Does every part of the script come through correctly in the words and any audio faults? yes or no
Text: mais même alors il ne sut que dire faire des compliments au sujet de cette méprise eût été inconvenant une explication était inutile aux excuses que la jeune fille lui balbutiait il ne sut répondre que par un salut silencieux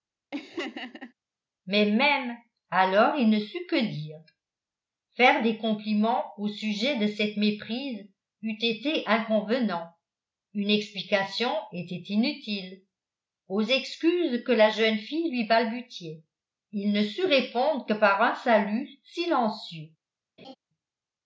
no